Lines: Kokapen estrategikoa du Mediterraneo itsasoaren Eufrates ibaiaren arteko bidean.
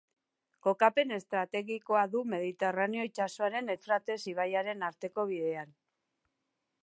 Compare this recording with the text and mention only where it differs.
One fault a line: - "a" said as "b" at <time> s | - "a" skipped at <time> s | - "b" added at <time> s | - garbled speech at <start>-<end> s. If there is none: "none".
none